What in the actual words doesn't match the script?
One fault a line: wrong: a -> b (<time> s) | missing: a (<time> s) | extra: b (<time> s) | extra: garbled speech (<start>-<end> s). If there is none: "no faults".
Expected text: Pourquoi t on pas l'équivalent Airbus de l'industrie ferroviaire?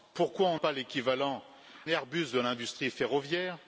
no faults